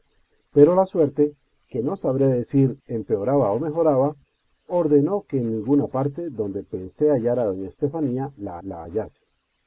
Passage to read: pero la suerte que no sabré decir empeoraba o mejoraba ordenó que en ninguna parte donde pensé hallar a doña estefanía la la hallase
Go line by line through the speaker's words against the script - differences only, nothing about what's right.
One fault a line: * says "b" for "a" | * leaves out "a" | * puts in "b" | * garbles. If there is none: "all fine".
all fine